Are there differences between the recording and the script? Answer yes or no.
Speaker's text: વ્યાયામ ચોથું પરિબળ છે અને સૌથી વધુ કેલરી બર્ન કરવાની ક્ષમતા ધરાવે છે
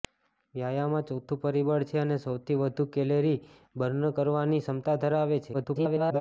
yes